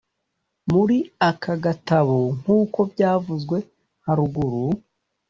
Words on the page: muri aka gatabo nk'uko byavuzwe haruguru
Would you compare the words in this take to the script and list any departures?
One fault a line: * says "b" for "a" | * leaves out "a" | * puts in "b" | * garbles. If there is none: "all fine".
all fine